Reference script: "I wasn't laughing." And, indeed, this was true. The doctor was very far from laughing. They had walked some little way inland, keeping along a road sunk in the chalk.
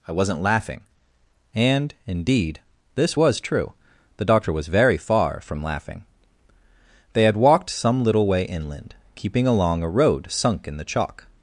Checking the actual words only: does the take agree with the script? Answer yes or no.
yes